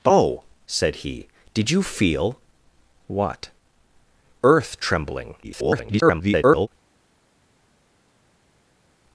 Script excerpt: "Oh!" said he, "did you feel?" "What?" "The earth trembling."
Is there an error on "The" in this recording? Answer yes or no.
yes